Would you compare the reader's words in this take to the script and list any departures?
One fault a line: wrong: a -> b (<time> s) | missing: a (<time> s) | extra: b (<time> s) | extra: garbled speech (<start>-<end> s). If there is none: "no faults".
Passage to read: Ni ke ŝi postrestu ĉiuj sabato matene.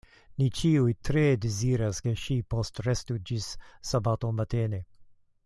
extra: ĉiuj tre deziras (0.6 s)
wrong: ĉiuj -> ĝis (3.3 s)